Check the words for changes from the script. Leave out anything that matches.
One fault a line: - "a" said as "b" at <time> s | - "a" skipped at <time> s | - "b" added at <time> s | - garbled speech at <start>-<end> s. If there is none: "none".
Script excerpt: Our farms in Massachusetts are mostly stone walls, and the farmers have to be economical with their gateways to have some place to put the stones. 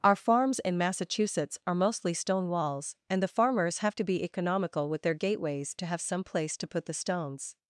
none